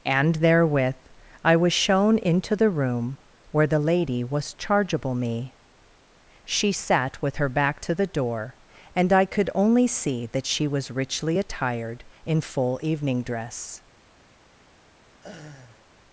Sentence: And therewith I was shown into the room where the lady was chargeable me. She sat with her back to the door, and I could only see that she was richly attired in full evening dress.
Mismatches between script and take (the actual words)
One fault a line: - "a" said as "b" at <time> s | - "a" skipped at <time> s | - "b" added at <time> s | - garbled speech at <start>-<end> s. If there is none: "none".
none